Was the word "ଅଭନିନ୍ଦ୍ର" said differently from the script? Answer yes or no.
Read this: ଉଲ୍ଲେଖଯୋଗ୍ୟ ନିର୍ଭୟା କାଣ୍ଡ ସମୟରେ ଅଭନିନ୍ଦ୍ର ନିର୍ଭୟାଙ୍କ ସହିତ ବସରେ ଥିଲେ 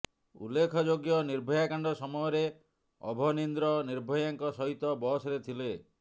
no